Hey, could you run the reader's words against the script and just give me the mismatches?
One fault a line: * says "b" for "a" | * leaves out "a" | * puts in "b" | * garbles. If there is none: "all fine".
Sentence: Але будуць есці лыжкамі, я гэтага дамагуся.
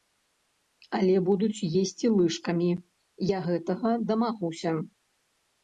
all fine